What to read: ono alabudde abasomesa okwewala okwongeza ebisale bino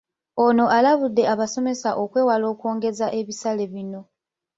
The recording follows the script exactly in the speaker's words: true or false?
true